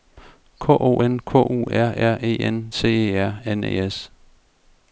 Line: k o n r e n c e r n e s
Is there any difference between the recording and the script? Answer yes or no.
yes